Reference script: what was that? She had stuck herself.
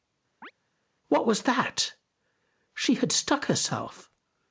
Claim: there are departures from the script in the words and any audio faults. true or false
true